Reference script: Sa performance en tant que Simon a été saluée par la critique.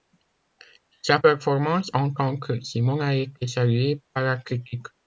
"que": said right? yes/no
yes